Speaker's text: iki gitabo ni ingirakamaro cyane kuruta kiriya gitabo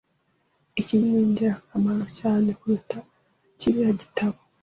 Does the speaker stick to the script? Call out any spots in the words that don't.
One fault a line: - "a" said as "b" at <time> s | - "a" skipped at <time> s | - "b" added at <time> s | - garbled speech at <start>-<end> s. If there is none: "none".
- "gitabo" skipped at 0.9 s